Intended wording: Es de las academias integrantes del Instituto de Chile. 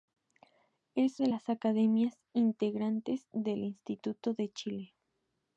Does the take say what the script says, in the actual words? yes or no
yes